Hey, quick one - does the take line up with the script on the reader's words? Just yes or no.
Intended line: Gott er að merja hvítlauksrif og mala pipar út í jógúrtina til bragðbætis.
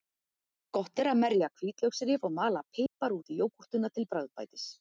yes